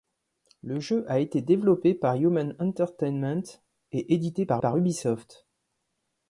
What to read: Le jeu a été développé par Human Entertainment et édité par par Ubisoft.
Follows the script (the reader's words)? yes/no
yes